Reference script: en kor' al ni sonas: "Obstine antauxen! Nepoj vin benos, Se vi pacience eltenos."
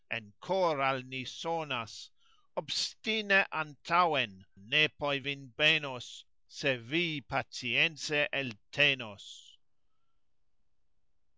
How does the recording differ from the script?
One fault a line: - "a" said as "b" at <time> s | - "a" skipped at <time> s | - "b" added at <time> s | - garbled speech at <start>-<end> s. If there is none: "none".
none